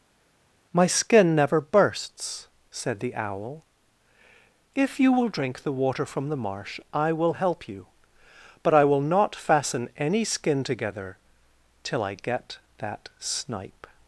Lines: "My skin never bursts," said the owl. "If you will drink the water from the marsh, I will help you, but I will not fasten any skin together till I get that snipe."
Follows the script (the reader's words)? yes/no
yes